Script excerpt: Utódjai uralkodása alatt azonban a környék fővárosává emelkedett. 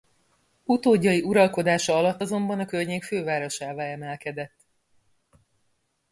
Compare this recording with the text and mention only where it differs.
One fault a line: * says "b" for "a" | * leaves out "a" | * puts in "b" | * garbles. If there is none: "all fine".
all fine